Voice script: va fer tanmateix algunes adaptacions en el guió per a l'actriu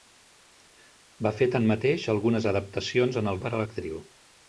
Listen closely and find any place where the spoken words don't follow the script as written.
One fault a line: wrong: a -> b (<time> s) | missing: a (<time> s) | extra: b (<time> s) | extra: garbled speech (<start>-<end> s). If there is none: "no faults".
missing: guió (3.4 s)